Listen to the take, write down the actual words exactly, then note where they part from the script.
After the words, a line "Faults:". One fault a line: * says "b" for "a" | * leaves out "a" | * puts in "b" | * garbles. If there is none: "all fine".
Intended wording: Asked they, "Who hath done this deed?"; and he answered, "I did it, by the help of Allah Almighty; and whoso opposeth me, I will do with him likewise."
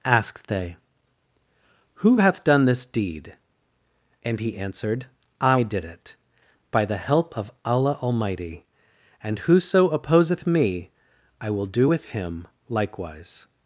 Asked they, "Who hath done this deed?"; and he answered, "I did it, by the help of Allah Almighty; and whoso opposeth me, I will do with him likewise."
Faults:
all fine